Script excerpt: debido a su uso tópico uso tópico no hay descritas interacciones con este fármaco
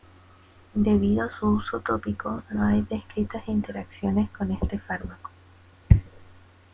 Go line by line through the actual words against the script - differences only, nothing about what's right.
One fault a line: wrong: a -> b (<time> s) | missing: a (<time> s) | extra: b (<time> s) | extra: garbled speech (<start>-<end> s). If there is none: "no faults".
missing: uso tópico (2.4 s)